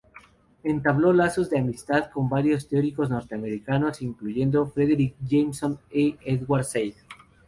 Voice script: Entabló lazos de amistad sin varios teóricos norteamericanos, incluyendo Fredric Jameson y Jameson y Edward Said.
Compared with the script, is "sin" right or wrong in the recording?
wrong